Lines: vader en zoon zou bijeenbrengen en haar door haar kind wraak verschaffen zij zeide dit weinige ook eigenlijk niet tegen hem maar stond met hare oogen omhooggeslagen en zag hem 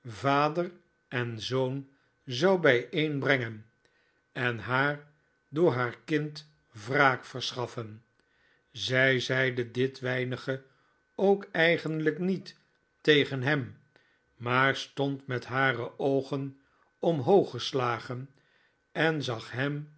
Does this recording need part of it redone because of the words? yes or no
no